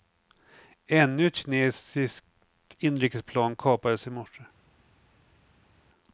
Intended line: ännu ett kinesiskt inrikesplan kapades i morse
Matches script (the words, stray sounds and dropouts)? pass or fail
pass